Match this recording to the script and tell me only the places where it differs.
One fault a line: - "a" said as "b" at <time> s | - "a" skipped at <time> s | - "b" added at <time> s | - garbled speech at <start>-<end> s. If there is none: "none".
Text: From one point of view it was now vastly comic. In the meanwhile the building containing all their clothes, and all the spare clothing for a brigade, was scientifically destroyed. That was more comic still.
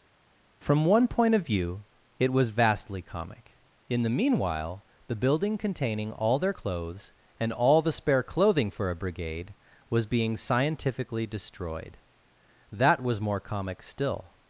- "now" skipped at 2.5 s
- "being" added at 10.1 s